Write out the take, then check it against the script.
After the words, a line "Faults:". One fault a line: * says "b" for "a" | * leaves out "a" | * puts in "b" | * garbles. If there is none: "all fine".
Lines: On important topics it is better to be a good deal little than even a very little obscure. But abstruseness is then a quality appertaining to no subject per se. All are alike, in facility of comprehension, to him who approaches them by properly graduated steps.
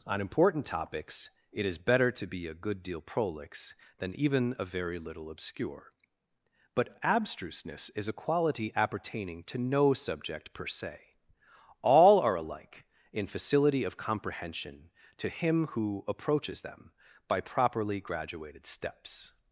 On important topics it is better to be a good deal prolix than even a very little obscure. But abstruseness is a quality appertaining to no subject per se. All are alike, in facility of comprehension, to him who approaches them by properly graduated steps.
Faults:
* says "prolix" for "little"
* leaves out "then"